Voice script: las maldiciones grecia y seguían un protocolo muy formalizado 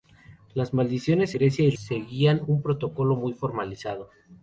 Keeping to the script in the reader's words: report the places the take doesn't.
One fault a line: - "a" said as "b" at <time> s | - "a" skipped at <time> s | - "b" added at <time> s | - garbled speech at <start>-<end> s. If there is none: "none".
none